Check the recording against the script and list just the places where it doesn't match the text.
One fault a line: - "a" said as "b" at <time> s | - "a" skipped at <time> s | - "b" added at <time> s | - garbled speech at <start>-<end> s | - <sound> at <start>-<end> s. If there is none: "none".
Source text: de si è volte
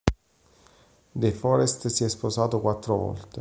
- "forest" added at 1.3 s
- "sposato quattro" added at 2.1 s